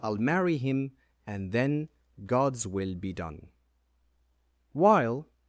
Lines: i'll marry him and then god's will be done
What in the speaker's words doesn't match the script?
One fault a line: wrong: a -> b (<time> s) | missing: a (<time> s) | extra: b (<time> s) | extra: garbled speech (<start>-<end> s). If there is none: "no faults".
extra: while (4.7 s)